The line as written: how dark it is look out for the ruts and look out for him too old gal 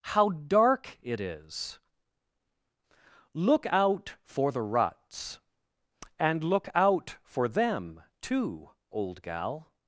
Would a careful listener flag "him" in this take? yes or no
yes